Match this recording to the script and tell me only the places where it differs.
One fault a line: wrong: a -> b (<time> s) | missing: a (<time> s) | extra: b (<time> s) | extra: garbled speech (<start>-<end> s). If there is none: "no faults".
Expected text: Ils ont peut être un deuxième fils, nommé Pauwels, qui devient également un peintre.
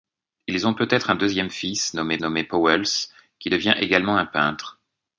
extra: nommé (2.2 s)